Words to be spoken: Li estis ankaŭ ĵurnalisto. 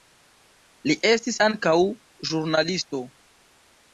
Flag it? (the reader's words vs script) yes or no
no